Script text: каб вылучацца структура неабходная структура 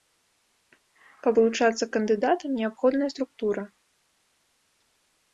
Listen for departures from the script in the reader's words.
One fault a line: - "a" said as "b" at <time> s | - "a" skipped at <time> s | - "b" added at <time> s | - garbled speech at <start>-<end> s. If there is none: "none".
- "структура" said as "кандыдатам" at 1.9 s